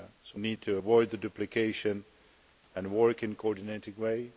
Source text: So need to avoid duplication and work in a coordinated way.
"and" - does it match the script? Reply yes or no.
yes